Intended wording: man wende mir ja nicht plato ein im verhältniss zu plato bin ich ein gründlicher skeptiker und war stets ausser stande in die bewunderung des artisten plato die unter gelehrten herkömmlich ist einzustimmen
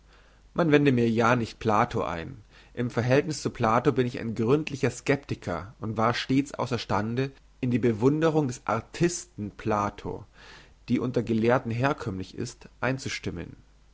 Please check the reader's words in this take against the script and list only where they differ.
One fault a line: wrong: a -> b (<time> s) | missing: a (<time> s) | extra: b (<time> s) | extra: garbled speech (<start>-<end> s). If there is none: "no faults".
no faults